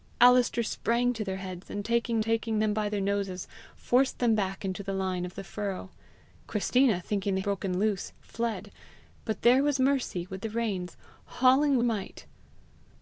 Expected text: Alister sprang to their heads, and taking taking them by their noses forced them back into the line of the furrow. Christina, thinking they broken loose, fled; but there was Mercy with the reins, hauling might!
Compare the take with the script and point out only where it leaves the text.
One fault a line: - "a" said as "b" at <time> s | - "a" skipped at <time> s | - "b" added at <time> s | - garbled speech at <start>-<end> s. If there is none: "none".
none